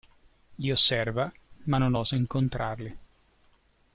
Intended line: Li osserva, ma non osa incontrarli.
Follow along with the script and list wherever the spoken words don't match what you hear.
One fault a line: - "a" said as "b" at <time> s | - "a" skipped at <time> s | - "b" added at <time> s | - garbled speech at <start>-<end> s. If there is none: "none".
none